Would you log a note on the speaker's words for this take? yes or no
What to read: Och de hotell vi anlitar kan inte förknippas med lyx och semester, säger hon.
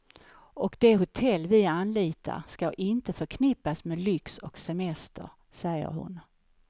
yes